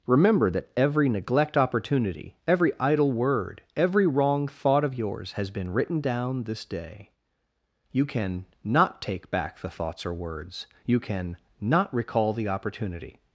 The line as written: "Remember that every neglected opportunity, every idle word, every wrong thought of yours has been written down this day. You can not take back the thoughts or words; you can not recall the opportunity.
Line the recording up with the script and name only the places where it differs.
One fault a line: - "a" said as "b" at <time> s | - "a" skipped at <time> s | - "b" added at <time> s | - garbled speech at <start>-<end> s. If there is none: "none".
- "neglected" said as "neglect" at 1.1 s